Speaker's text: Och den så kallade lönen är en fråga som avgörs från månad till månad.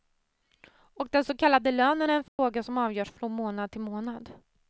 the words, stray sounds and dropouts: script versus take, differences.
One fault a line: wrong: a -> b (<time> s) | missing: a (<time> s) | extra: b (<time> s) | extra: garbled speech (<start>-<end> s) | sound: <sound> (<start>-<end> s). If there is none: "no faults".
sound: dropout (2.3-2.4 s)